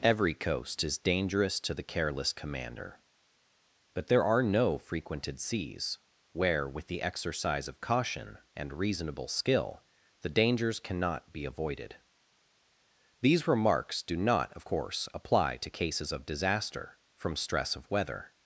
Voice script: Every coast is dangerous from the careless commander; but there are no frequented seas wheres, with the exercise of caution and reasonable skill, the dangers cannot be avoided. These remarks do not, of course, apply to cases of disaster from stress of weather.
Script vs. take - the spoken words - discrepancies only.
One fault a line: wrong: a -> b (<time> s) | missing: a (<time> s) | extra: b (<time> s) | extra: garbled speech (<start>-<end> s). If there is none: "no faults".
wrong: from -> to (1.6 s)
wrong: wheres -> where (6.3 s)